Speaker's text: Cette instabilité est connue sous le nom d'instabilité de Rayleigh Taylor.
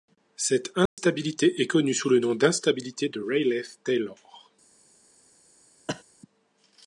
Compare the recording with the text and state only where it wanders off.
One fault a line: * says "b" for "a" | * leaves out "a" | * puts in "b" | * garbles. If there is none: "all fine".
all fine